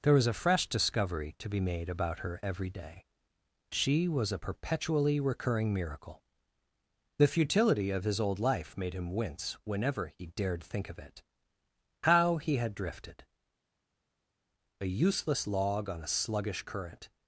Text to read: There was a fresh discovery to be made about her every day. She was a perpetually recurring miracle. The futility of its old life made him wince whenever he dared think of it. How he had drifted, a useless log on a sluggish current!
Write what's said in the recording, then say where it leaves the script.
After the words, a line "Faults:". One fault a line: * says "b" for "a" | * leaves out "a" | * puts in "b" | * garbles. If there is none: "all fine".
There was a fresh discovery to be made about her every day. She was a perpetually recurring miracle. The futility of his old life made him wince whenever he dared think of it. How he had drifted, a useless log on a sluggish current!
Faults:
* says "his" for "its"